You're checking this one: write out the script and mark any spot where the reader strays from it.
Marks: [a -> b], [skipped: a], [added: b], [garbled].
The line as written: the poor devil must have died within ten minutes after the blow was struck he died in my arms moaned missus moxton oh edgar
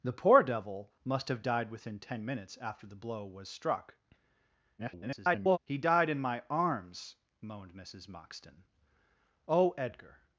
the poor devil must have died within ten minutes after the blow was struck [garbled] he died in my arms moaned missus moxton oh edgar